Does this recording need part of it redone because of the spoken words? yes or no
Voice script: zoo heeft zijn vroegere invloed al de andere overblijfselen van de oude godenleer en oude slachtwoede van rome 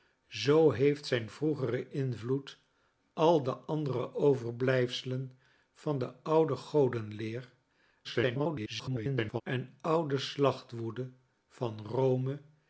yes